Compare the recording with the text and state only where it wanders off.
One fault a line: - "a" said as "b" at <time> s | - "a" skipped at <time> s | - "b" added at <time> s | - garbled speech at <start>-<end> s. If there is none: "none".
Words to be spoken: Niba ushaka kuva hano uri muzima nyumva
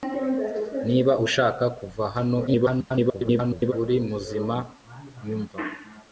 - garbled speech at 2.5-3.7 s